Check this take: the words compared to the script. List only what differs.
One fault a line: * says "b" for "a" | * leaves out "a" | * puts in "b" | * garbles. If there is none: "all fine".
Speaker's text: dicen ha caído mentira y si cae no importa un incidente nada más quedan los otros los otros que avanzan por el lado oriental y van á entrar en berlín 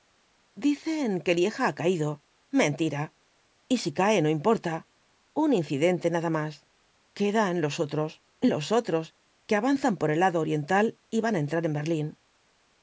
* puts in "que lieja"